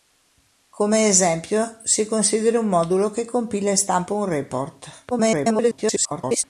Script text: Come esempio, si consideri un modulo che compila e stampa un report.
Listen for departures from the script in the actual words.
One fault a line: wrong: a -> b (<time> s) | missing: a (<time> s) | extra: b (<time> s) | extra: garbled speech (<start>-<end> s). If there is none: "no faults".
extra: garbled speech (5.1-6.4 s)